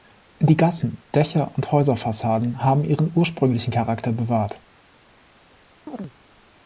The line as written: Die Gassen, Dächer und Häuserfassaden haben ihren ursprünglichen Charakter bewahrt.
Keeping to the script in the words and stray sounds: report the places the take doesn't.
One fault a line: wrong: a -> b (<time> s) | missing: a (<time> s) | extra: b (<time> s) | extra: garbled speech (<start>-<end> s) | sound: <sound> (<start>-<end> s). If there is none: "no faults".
sound: chirp (5.9-6.1 s)